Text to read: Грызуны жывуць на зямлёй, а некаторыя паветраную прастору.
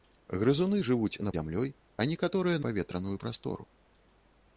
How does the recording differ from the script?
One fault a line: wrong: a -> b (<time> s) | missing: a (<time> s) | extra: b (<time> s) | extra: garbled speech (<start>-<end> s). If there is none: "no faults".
no faults